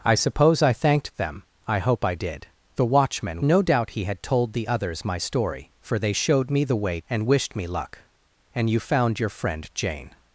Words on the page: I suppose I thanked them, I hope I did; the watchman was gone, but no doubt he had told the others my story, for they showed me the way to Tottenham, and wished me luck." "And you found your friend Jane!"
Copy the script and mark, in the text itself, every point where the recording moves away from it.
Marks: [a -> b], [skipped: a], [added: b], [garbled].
I suppose I thanked them, I hope I did; the watchman [skipped: was gone, but] no doubt he had told the others my story, for they showed me the way [skipped: to Tottenham,] and wished me luck." "And you found your friend Jane!"